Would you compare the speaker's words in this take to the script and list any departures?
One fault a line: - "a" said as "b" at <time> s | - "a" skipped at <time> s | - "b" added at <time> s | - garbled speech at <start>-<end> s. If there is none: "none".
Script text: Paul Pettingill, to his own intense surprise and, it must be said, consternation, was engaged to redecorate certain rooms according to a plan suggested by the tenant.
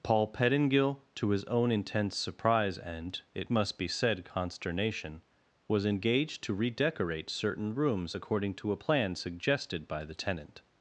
none